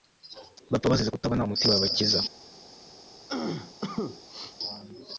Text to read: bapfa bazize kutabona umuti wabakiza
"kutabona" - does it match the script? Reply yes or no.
yes